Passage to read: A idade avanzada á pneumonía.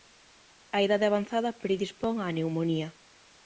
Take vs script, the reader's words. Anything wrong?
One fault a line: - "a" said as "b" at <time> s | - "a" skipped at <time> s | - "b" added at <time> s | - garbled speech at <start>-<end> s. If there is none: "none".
- "predispón" added at 1.6 s